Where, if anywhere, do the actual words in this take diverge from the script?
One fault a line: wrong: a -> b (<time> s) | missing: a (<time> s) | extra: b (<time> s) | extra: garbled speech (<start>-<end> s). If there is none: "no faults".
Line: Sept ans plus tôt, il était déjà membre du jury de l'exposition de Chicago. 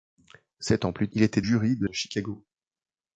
missing: tôt (1.1 s)
missing: déjà membre du (1.4 s)
missing: l'exposition (1.9 s)